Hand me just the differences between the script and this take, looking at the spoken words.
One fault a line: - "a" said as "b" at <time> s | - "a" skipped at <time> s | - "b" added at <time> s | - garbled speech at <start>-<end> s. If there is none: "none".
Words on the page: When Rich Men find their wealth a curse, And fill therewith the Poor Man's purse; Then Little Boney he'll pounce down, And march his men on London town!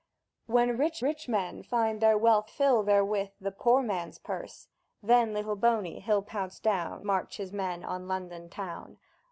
- "Rich" added at 1.0 s
- "a curse And" skipped at 2.5 s
- "And" skipped at 7.1 s